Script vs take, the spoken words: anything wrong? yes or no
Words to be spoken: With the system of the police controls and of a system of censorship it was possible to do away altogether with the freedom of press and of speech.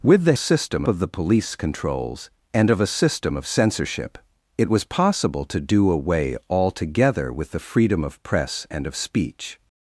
no